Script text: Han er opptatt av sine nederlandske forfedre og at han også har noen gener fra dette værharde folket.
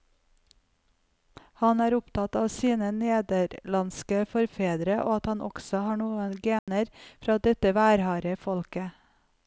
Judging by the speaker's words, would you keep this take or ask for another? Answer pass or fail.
pass